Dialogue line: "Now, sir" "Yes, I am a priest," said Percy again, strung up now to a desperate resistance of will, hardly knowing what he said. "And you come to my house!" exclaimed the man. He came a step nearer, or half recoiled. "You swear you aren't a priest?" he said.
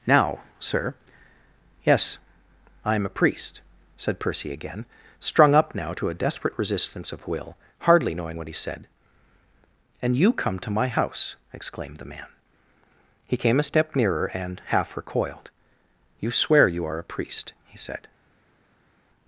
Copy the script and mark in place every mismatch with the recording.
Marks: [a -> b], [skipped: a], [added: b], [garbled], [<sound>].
"Now, sir" "Yes, I am a priest," said Percy again, strung up now to a desperate resistance of will, hardly knowing what he said. "And you come to my house!" exclaimed the man. He came a step nearer, [or -> and] half recoiled. "You swear you [aren't -> are] a priest?" he said.